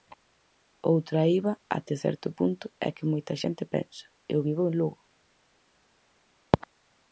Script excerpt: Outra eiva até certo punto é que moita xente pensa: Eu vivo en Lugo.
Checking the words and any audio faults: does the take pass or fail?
pass